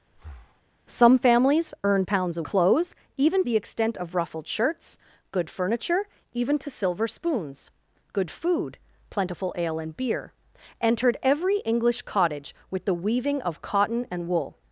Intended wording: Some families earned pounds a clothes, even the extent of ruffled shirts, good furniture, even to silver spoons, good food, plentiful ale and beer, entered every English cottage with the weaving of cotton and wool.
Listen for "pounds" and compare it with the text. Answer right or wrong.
right